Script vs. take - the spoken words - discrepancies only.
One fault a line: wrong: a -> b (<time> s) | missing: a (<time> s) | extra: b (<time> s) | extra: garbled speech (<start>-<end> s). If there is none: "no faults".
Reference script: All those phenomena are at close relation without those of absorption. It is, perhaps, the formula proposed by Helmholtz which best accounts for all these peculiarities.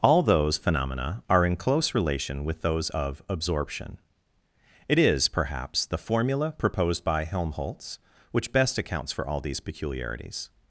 wrong: at -> in (1.4 s)
wrong: without -> with (2.4 s)